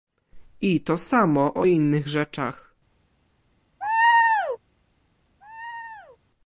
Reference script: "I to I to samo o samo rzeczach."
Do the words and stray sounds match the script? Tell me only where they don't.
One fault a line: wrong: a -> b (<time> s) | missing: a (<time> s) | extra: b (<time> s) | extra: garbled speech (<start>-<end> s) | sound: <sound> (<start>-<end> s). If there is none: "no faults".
missing: I to (1.0 s)
wrong: samo -> innych (1.6 s)
sound: laugh (3.8-4.6 s)
sound: laugh (5.4-6.2 s)